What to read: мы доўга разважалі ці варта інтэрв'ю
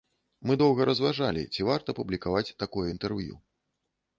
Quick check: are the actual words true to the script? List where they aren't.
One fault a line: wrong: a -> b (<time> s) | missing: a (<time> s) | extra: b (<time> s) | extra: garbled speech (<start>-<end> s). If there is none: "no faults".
extra: публікаваць такое (2.0 s)